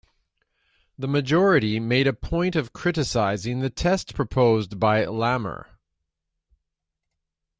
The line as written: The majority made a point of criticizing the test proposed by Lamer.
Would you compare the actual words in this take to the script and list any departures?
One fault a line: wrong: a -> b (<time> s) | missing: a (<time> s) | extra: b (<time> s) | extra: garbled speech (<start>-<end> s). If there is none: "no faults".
no faults